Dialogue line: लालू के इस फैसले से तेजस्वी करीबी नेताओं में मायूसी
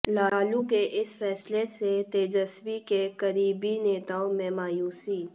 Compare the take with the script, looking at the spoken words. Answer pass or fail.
fail